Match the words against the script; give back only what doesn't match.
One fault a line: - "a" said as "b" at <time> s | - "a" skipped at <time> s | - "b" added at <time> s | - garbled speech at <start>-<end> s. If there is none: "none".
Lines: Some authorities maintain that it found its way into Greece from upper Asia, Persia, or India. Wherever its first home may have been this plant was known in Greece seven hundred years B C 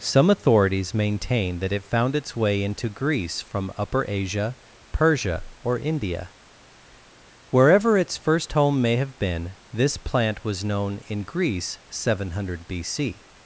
- "years" skipped at 12.7 s